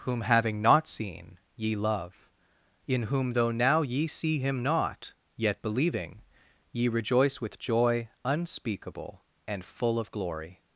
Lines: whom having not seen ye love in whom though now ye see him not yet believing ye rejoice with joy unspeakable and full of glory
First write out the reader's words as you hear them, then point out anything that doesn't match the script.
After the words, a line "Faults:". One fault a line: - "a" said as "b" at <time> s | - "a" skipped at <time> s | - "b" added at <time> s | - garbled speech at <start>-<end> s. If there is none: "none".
whom having not seen ye love in whom though now ye see him not yet believing ye rejoice with joy unspeakable and full of glory
Faults:
none